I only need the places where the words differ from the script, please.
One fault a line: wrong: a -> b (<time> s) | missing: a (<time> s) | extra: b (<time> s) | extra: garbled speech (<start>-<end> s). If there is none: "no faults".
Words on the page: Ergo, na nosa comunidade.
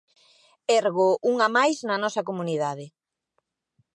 extra: unha máis (1.3 s)